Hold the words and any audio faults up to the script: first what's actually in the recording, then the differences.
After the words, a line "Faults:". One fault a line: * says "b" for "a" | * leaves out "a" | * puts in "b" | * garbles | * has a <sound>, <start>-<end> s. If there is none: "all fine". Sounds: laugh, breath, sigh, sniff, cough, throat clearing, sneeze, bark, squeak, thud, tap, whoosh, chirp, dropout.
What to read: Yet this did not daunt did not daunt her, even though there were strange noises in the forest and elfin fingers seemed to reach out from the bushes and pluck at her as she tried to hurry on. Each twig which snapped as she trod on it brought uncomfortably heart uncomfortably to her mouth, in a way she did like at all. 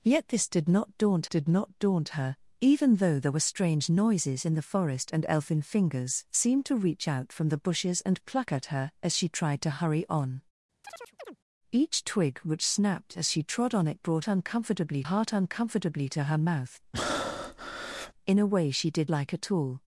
Yet this did not daunt did not daunt her, even though there were strange noises in the forest and elfin fingers seemed to reach out from the bushes and pluck at her as she tried to hurry on. Each twig which snapped as she trod on it brought uncomfortably heart uncomfortably to her mouth, in a way she did like at all.
Faults:
* has a chirp, 10.8-11.4 s
* has a breath, 16.9-18.1 s